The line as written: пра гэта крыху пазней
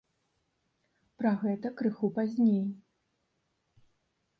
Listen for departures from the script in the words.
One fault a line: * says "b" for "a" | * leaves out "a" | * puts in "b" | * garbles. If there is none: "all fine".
all fine